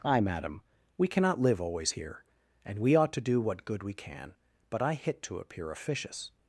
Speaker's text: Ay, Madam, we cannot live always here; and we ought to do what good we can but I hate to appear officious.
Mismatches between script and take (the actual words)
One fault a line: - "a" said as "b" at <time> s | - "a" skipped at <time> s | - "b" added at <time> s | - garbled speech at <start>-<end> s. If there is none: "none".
- "hate" said as "hit" at 4.9 s